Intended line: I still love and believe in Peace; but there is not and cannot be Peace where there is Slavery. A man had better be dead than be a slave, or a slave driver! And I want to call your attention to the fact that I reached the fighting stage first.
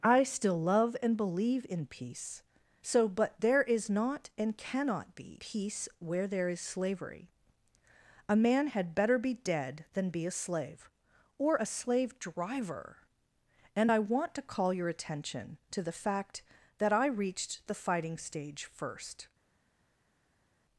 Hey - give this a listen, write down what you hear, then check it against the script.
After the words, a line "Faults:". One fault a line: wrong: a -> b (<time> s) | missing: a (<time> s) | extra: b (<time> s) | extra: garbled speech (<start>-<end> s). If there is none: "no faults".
I still love and believe in Peace; so but there is not and cannot be Peace where there is Slavery. A man had better be dead than be a slave, or a slave driver! And I want to call your attention to the fact that I reached the fighting stage first.
Faults:
extra: so (2.8 s)